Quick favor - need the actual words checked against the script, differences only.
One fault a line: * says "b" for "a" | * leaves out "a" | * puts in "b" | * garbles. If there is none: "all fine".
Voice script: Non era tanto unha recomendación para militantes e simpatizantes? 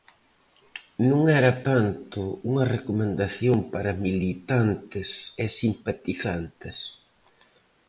all fine